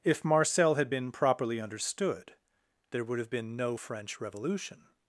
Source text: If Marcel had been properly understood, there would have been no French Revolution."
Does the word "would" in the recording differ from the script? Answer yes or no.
no